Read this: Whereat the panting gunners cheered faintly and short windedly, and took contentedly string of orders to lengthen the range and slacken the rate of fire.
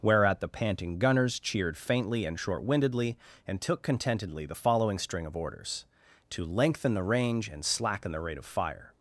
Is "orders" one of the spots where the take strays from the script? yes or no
no